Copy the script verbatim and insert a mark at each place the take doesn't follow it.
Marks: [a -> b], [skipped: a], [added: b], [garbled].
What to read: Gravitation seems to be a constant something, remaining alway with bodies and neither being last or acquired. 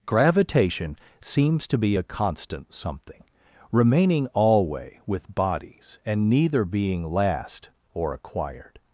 Gravitation seems to be a constant something, remaining alway with bodies and neither being last or acquired.